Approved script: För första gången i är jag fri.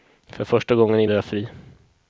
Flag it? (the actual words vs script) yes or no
no